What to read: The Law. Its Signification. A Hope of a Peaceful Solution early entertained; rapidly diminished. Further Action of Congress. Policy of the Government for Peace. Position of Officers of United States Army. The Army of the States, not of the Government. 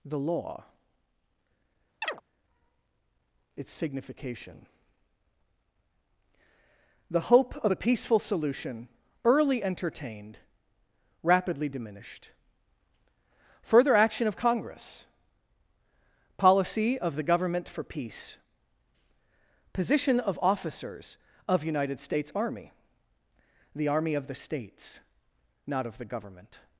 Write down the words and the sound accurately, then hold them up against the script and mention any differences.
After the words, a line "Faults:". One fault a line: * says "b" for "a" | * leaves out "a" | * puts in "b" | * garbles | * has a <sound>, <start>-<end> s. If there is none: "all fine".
The Law. Its Signification. The Hope of a Peaceful Solution early entertained; rapidly diminished. Further Action of Congress. Policy of the Government for Peace. Position of Officers of United States Army. The Army of the States, not of the Government.
Faults:
* has a chirp, 2.0-2.2 s
* says "The" for "A"